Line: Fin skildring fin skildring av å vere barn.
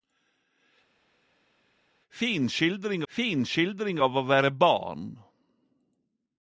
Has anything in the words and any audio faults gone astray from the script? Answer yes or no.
no